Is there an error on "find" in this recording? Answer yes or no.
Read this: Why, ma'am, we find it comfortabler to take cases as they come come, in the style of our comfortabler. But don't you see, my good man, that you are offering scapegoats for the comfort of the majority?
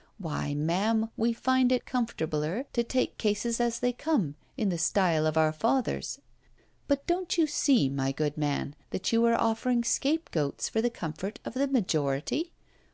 no